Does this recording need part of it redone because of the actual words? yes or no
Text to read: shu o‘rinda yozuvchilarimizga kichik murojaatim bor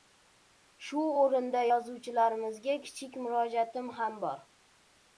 yes